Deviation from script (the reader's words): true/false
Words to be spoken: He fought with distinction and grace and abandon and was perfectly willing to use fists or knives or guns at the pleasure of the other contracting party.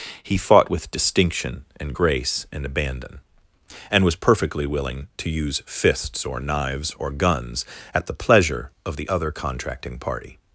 false